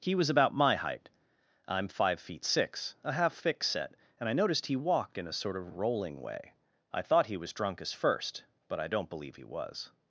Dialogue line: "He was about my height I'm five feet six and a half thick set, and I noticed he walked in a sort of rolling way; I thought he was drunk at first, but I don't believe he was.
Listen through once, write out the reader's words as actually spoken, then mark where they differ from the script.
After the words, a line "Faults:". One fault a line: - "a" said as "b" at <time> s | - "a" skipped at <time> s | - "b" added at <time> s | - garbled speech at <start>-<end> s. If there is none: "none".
"He was about my height I'm five feet six a half thick set, and I noticed he walked in a sort of rolling way; I thought he was drunk as first, but I don't believe he was.
Faults:
- "and" skipped at 3.0 s
- "at" said as "as" at 7.8 s